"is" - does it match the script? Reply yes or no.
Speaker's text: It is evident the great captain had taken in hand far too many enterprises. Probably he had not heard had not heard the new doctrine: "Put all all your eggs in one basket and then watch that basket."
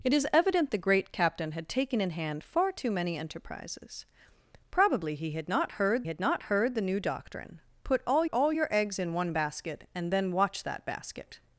yes